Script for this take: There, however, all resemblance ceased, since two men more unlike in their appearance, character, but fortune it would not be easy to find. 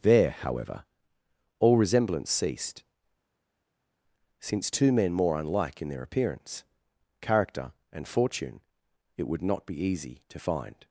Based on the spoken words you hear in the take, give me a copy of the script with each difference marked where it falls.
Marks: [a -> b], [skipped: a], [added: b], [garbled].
There, however, all resemblance ceased, since two men more unlike in their appearance, character, [but -> and] fortune it would not be easy to find.